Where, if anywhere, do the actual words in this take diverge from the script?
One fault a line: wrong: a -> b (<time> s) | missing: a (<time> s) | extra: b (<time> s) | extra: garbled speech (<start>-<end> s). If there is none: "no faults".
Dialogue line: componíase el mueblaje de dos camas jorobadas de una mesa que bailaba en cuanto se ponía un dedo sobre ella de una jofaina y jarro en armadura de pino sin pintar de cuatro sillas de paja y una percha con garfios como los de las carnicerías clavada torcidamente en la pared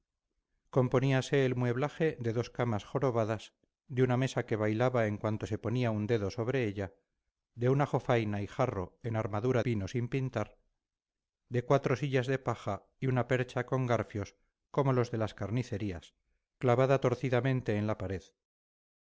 missing: de (9.6 s)